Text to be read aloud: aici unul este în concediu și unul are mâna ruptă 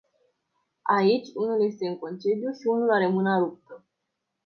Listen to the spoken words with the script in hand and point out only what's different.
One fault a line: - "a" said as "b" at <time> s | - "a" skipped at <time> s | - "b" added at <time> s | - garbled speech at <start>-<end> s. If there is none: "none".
none